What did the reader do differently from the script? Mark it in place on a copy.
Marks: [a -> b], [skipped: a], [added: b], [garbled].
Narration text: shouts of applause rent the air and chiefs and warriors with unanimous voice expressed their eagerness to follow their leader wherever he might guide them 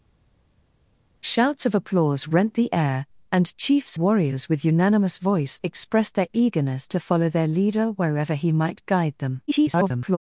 shouts of applause rent the air and chiefs [skipped: and] warriors with unanimous voice expressed their eagerness to follow their leader wherever he might guide them [garbled]